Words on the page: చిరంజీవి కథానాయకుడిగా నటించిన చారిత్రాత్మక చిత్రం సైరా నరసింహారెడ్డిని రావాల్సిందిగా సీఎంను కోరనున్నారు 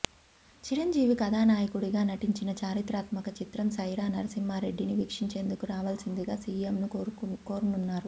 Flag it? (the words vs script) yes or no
yes